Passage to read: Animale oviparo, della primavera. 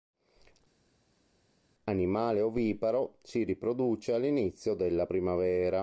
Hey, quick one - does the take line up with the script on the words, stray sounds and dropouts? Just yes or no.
no